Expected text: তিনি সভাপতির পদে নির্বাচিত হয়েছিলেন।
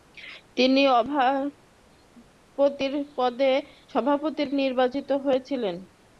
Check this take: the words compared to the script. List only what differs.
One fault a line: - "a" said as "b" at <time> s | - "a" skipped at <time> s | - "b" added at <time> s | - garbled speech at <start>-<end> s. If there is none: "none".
- "পদে" skipped at 4.5 s